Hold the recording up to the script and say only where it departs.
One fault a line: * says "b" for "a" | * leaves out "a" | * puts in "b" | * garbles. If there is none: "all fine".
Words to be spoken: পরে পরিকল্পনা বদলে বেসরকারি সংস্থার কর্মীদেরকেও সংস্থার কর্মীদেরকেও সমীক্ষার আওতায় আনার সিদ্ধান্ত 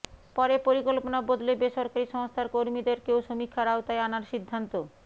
* leaves out "সংস্থার কর্মীদেরকেও"